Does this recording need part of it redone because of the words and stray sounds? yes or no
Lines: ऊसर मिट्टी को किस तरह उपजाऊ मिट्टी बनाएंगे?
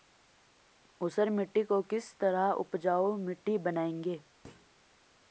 yes